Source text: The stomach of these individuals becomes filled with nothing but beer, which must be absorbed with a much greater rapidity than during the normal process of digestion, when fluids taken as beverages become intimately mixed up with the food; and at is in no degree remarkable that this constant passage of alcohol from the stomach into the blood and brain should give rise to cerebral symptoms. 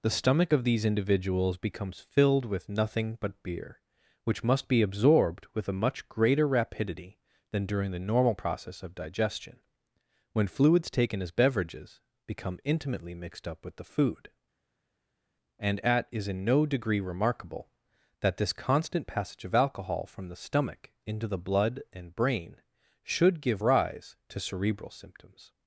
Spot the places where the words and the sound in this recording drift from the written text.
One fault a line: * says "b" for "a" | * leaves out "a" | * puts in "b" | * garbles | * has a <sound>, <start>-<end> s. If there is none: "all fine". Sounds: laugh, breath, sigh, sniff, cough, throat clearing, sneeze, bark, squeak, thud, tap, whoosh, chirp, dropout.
all fine